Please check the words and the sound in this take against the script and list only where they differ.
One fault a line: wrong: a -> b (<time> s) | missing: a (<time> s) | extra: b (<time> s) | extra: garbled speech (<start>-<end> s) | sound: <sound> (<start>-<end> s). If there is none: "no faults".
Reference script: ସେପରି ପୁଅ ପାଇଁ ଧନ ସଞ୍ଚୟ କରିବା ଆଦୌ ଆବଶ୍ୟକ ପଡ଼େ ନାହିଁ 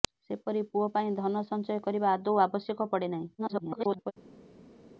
extra: garbled speech (3.4-4.1 s)